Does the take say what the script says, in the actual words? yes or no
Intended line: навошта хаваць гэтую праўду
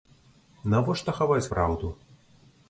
no